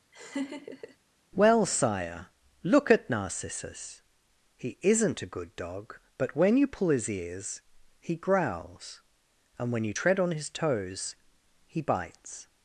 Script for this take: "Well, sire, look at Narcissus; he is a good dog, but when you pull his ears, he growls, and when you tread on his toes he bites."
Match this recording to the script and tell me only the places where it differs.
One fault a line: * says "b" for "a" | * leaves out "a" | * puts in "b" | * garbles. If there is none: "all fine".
* says "isn't" for "is"